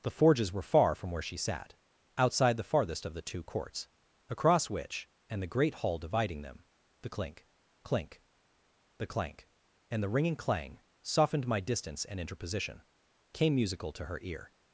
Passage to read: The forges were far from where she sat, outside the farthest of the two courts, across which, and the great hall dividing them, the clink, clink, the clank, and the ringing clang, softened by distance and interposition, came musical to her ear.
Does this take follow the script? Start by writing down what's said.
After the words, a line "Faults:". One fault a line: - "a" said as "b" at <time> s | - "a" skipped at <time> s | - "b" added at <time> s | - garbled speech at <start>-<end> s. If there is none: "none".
The forges were far from where she sat, outside the farthest of the two courts, across which, and the great hall dividing them, the clink, clink, the clank, and the ringing clang, softened my distance and interposition, came musical to her ear.
Faults:
- "by" said as "my" at 11.5 s